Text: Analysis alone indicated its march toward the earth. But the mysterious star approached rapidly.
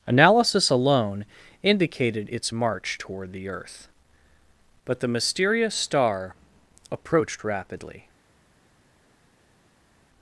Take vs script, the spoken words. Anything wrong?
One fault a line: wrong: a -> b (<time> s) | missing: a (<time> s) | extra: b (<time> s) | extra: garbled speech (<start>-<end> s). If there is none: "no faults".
no faults